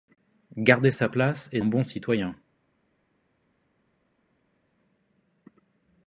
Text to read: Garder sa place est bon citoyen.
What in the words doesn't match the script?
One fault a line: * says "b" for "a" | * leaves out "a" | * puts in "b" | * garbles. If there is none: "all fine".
all fine